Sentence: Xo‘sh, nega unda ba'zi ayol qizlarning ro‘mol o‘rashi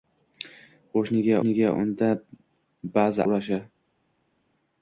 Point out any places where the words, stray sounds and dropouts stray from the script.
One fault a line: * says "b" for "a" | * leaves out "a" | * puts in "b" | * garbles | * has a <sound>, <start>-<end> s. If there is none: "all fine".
* puts in "nega"
* leaves out "ayol qizlarning ro‘mol"